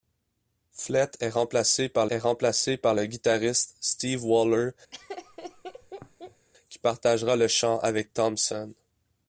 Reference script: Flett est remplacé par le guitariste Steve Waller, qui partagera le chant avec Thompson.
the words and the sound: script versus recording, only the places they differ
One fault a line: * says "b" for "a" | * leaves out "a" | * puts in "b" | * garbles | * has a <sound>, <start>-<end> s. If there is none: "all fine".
* puts in "est remplacé par"
* has a laugh, 4.9-6.5 s